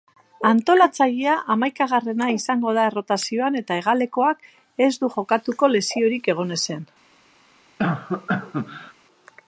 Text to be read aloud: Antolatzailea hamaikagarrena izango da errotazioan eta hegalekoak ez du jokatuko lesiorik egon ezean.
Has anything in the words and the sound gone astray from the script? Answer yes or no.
yes